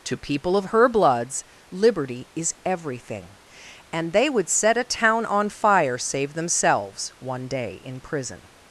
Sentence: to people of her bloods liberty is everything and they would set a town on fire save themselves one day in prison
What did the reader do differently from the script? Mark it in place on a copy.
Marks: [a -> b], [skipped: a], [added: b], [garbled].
to people of her bloods liberty is everything and they would set a town on fire save themselves one day in prison